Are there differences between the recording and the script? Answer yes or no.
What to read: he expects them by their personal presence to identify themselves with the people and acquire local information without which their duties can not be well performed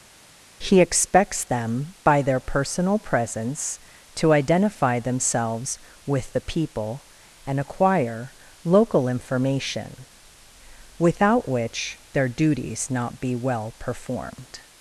yes